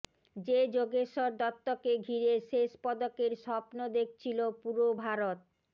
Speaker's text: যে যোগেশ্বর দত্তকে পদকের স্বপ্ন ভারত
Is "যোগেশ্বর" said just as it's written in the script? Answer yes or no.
yes